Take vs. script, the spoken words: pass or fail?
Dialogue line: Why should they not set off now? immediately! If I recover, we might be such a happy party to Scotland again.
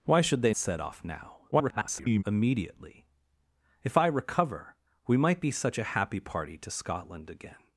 fail